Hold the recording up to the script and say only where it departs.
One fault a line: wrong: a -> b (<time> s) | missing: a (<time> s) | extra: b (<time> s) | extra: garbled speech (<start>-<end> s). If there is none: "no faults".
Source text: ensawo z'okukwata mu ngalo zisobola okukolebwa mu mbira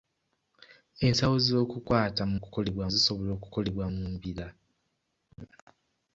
wrong: ngalo -> okukolebwa (2.4 s)